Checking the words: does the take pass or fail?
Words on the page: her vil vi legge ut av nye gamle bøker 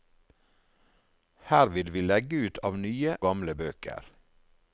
pass